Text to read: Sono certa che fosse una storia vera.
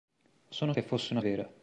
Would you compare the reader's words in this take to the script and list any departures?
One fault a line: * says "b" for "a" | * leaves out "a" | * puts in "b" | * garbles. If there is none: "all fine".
* leaves out "certa"
* leaves out "storia"